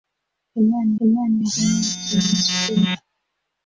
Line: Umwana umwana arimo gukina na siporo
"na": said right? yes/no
yes